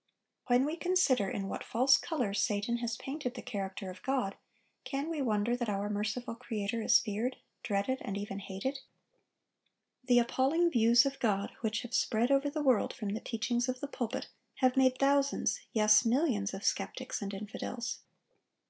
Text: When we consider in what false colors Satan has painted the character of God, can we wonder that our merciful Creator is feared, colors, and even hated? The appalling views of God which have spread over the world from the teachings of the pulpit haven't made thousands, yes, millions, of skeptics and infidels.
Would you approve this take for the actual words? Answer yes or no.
no